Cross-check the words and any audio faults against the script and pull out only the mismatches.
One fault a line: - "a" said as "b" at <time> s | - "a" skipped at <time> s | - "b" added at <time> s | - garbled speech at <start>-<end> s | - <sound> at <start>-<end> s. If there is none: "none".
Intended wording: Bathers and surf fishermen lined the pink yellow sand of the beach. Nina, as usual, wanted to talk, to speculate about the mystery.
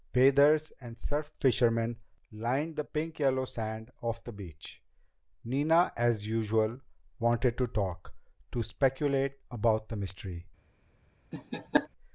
- laugh at 11.3-11.9 s